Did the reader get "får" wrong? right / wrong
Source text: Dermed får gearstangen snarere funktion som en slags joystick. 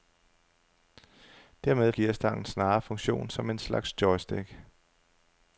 wrong